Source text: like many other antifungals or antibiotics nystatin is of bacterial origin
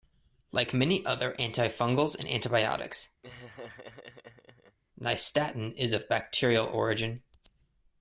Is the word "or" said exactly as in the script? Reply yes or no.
no